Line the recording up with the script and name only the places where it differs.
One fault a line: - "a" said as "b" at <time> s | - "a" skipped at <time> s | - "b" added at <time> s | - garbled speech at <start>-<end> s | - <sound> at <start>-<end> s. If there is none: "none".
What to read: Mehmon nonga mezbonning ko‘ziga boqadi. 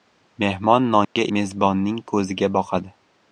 - dropout at 1.0-1.2 s